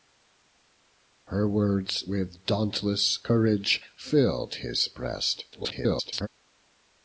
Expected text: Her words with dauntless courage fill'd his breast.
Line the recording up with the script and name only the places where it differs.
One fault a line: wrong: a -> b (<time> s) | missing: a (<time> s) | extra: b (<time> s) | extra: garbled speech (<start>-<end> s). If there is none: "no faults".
extra: garbled speech (5.5-6.3 s)